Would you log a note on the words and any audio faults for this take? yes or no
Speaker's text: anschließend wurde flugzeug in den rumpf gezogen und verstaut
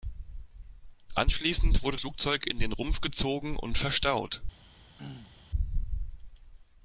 yes